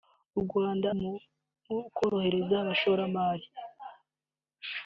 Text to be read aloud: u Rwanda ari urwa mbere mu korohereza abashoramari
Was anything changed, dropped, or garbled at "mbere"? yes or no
yes